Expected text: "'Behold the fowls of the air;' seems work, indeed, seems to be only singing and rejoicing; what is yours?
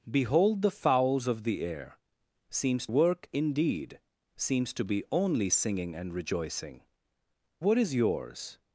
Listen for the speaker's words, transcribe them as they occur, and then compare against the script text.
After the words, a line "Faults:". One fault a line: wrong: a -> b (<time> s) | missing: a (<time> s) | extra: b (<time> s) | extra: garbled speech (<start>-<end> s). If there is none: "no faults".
"'Behold the fowls of the air;' seems work, indeed, seems to be only singing and rejoicing; what is yours?
Faults:
no faults